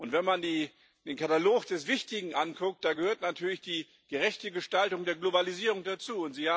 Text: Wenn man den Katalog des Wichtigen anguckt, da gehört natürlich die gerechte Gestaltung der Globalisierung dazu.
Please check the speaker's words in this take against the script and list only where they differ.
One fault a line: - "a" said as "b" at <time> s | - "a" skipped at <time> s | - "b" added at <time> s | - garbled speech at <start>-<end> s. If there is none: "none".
none